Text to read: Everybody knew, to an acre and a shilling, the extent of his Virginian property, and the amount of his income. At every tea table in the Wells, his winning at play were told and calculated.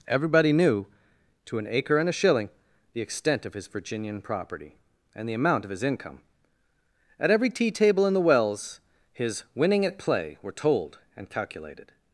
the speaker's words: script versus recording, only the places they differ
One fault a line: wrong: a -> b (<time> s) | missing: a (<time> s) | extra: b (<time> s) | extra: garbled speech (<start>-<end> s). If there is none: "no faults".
no faults